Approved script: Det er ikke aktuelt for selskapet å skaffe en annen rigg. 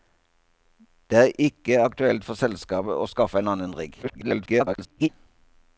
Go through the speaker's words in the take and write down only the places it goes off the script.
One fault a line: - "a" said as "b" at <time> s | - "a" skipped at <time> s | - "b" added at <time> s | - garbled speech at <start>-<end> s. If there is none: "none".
- garbled speech at 4.0-5.1 s